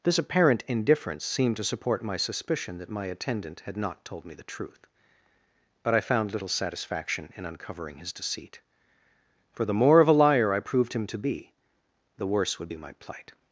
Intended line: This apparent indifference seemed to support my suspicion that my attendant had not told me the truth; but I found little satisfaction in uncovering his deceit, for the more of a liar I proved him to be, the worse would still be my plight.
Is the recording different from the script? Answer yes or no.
yes